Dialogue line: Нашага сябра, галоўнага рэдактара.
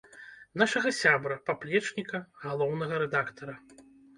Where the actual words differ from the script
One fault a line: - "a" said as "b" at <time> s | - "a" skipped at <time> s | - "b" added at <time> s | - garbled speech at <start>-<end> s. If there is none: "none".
- "паплечніка" added at 1.5 s